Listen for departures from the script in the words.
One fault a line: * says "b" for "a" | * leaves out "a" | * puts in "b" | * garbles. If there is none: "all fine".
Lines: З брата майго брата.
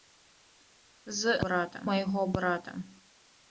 all fine